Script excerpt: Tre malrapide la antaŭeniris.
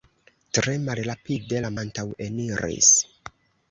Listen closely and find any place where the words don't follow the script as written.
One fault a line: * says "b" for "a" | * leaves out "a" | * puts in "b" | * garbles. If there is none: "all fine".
all fine